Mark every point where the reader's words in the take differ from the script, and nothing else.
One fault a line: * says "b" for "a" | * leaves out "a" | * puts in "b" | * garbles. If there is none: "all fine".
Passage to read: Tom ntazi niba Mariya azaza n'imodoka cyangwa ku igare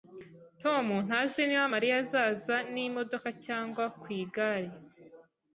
all fine